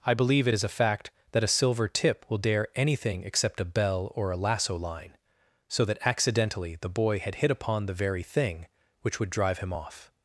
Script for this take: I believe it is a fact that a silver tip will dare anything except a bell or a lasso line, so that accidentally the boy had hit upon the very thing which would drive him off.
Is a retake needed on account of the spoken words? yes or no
no